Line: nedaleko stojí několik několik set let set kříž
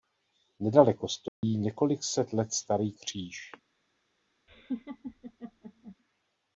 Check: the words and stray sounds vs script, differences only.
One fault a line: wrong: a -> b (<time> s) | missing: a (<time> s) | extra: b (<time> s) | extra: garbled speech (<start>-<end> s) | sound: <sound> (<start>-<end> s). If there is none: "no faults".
sound: dropout (1.3-1.4 s)
missing: několik (2.0 s)
wrong: set -> starý (2.5 s)
sound: laugh (4.5-6.0 s)